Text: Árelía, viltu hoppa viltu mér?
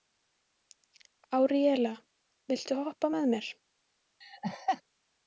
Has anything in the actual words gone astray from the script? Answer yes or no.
yes